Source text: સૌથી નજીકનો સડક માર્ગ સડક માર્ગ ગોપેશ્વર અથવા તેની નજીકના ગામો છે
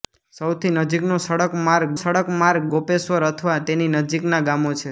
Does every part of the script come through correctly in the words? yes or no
yes